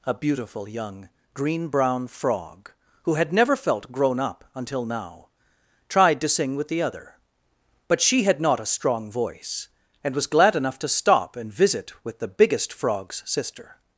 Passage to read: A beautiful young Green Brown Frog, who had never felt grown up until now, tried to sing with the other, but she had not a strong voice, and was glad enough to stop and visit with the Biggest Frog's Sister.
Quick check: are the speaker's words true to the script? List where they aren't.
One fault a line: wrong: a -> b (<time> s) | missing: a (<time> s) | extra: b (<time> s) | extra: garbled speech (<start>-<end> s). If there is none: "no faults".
no faults